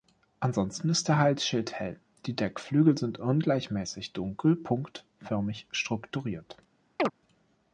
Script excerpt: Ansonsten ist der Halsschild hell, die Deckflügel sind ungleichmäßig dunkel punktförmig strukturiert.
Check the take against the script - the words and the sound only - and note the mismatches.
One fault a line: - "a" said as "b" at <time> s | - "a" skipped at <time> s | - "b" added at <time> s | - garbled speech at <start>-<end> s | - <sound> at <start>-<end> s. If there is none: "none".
- chirp at 7.0-7.1 s